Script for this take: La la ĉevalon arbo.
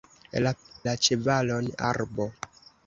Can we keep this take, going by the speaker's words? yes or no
yes